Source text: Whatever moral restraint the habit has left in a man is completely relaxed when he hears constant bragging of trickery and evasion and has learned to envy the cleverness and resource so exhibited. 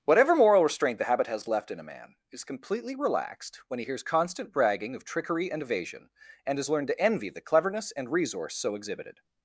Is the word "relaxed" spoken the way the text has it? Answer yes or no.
yes